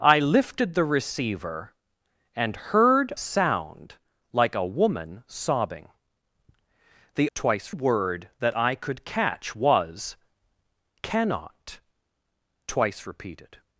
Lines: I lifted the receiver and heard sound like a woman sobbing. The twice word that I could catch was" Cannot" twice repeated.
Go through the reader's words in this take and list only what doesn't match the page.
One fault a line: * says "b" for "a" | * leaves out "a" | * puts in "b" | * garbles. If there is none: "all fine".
all fine